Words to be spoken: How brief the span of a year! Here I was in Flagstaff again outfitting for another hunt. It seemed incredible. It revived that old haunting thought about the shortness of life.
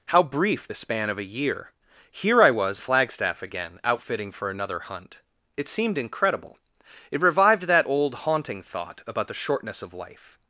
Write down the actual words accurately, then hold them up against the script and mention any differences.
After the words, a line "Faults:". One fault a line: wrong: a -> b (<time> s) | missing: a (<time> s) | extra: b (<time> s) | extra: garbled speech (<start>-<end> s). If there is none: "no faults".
How brief the span of a year! Here I was Flagstaff again outfitting for another hunt. It seemed incredible. It revived that old haunting thought about the shortness of life.
Faults:
missing: in (2.8 s)